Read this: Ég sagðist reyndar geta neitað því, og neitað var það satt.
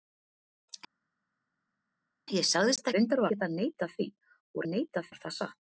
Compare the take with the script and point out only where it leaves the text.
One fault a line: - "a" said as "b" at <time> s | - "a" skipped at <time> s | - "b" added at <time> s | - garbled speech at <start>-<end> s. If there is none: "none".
none